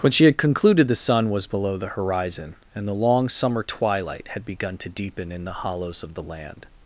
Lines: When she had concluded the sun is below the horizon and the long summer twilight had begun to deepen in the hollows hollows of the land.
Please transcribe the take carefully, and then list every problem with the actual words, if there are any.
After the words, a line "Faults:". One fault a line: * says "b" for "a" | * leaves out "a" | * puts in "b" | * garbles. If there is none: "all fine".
When she had concluded the sun was below the horizon and the long summer twilight had begun to deepen in the hollows of the land.
Faults:
* says "was" for "is"
* leaves out "hollows"